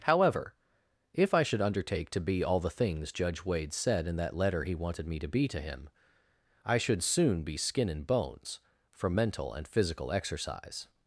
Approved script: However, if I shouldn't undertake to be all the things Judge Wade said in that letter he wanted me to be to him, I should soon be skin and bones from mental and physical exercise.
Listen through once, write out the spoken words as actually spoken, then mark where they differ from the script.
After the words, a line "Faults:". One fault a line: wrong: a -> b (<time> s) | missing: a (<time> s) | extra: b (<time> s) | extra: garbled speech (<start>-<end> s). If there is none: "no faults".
However, if I should undertake to be all the things Judge Wade said in that letter he wanted me to be to him, I should soon be skin and bones from mental and physical exercise.
Faults:
wrong: shouldn't -> should (1.4 s)